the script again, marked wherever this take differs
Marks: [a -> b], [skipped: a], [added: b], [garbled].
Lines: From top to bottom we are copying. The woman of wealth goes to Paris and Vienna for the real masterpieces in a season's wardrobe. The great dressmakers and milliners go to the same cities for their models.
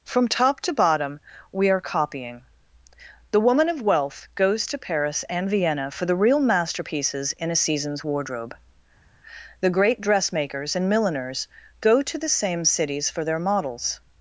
From top to bottom we are copying. The woman of wealth goes to Paris and Vienna for the real masterpieces in a season's wardrobe. The great dressmakers and milliners go to the same cities for their models.